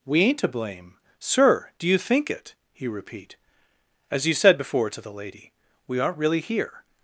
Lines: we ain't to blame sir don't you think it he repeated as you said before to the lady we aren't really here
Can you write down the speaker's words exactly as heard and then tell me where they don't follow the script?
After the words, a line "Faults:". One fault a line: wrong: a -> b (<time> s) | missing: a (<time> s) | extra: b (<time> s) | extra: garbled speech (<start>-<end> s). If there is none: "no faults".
we ain't to blame sir do you think it he repeat as you said before to the lady we aren't really here
Faults:
wrong: don't -> do (1.8 s)
wrong: repeated -> repeat (2.9 s)